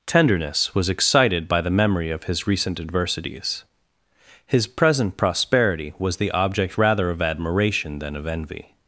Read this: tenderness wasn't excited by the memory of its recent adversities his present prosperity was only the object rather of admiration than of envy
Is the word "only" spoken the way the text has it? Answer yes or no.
no